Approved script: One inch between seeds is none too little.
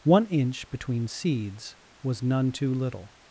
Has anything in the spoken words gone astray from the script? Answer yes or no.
yes